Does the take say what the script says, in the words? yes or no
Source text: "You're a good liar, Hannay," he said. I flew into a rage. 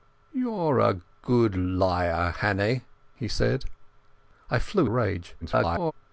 no